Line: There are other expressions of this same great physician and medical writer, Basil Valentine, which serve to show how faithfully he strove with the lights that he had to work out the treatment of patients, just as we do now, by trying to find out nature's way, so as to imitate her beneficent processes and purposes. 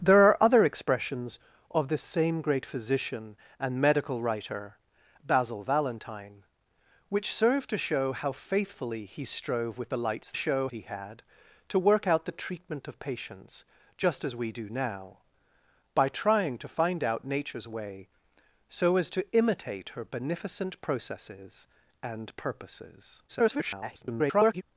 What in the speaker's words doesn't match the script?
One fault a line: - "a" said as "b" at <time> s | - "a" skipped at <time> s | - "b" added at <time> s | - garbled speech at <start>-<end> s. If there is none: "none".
- "that" said as "show" at 10.3 s
- garbled speech at 23.3-24.6 s